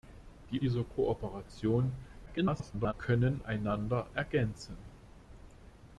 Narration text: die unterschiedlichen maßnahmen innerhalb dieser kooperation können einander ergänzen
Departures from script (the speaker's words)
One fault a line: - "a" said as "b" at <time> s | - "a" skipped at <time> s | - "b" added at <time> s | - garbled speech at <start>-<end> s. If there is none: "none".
- "unterschiedlichen maßnahmen innerhalb" skipped at 0.6 s
- garbled speech at 2.3-2.9 s